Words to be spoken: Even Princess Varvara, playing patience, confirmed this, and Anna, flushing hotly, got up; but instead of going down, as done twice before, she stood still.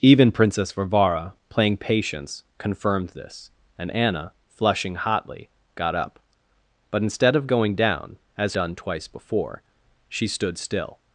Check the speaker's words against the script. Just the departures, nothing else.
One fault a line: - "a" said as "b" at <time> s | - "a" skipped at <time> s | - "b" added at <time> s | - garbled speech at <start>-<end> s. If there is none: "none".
none